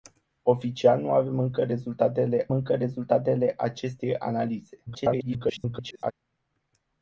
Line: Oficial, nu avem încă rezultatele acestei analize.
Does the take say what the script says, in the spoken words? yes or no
no